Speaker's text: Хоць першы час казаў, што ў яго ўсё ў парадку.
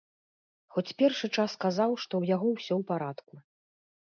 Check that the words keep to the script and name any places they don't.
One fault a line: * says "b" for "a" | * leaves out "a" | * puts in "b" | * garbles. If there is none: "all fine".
all fine